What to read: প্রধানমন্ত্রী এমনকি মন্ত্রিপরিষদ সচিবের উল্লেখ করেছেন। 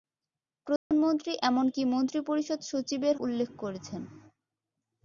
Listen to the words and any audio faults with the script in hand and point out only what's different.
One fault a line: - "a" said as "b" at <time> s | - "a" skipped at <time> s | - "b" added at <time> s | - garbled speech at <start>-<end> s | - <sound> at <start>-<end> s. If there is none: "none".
- dropout at 0.8-0.9 s